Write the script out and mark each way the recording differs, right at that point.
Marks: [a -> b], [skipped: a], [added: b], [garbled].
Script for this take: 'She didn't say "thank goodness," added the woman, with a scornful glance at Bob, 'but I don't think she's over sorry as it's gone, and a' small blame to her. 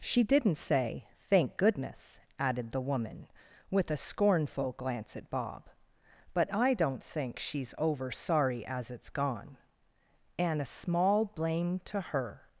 'She didn't say "thank goodness," added the woman, with a scornful glance at Bob, 'but I don't think she's over sorry as it's gone, and a' small blame to her.